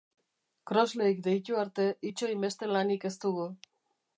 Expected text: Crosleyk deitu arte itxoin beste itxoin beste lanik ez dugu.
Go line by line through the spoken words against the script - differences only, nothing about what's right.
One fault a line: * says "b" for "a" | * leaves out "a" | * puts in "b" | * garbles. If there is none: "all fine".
* leaves out "itxoin beste"